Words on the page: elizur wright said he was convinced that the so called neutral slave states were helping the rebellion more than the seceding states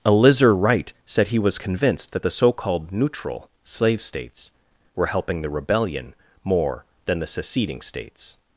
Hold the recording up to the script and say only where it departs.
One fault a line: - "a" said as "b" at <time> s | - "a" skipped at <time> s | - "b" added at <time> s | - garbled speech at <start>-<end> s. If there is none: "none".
none